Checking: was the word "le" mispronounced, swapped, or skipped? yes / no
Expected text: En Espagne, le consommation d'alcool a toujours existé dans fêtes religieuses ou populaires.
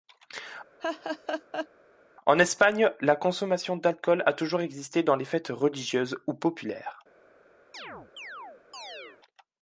yes